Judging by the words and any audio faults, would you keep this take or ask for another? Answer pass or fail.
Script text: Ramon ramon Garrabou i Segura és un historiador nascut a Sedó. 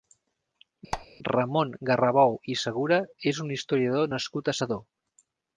fail